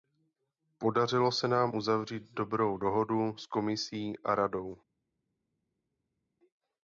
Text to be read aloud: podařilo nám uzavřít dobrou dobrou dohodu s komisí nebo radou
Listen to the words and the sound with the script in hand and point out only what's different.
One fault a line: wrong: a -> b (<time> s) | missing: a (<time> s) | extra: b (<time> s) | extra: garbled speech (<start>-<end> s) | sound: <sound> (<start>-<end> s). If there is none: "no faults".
extra: se (1.3 s)
missing: dobrou (2.8 s)
wrong: nebo -> a (4.2 s)